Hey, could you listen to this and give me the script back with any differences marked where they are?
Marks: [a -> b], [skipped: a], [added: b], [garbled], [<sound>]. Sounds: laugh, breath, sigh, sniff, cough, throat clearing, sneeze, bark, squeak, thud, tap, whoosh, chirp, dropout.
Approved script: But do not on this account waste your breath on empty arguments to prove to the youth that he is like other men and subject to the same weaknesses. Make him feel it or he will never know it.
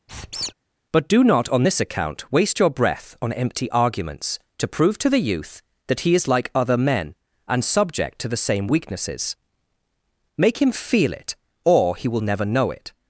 [squeak] But do not on this account waste your breath on empty arguments to prove to the youth that he is like other men and subject to the same weaknesses. Make him feel it or he will never know it.